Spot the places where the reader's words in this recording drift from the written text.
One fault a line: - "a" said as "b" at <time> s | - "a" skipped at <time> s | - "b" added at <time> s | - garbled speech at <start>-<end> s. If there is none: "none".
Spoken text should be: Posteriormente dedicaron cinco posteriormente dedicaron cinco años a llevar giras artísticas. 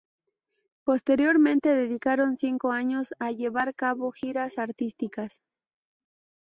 - "posteriormente dedicaron cinco" skipped at 2.7 s
- "cabo" added at 3.8 s